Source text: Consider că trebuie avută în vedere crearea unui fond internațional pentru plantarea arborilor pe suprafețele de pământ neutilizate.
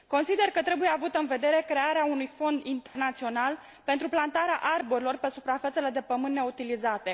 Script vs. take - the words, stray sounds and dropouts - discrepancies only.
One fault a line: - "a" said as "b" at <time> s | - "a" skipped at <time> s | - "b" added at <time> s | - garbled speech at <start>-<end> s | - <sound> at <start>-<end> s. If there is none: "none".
- dropout at 2.9-3.0 s